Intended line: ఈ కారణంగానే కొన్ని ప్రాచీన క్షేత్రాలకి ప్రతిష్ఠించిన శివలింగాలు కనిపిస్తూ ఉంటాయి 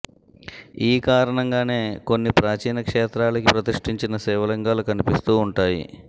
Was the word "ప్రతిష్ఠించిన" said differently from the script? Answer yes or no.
no